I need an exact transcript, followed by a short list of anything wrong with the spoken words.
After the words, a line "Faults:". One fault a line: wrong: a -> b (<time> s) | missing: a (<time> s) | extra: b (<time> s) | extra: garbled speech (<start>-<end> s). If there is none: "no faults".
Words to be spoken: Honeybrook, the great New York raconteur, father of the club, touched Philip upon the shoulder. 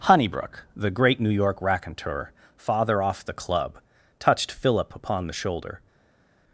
Honeybrook, the great New York raconteur, father off the club, touched Philip upon the shoulder.
Faults:
wrong: of -> off (3.0 s)